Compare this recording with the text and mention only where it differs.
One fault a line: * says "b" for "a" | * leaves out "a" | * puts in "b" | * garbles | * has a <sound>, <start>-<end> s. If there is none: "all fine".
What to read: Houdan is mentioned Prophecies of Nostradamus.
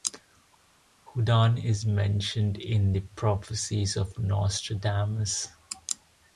* puts in "in the"